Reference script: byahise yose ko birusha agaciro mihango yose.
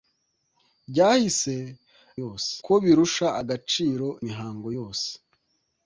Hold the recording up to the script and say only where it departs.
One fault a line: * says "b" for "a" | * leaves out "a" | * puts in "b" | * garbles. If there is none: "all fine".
all fine